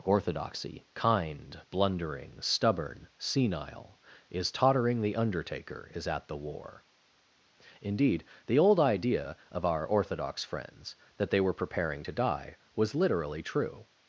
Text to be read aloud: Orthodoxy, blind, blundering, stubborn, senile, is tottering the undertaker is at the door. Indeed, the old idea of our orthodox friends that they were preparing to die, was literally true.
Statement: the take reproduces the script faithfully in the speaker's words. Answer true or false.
false